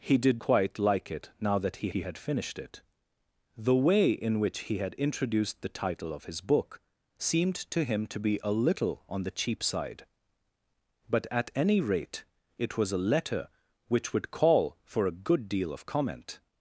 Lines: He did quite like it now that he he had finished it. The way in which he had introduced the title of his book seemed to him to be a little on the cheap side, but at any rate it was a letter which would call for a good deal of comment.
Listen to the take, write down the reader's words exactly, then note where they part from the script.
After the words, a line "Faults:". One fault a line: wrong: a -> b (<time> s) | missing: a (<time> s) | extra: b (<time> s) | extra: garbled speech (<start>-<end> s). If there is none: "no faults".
He did quite like it now that he he had finished it. The way in which he had introduced the title of his book seemed to him to be a little on the cheap side, but at any rate it was a letter which would call for a good deal of comment.
Faults:
no faults